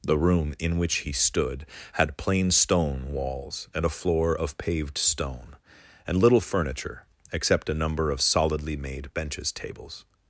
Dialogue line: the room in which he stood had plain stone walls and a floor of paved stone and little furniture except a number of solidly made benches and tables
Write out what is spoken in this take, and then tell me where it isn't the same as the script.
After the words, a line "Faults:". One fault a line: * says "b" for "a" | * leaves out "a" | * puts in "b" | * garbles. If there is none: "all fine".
the room in which he stood had plain stone walls and a floor of paved stone and little furniture except a number of solidly made benches tables
Faults:
* leaves out "and"